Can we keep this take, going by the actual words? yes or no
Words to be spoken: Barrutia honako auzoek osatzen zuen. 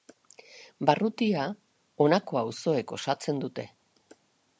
no